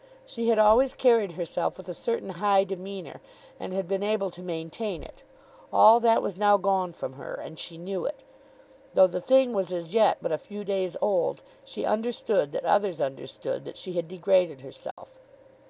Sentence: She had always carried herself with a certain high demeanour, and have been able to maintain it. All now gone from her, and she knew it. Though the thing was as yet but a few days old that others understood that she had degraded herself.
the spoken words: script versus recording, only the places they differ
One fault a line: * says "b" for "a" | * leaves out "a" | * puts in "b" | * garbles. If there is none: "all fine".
* says "had" for "have"
* puts in "that was"
* puts in "she understood"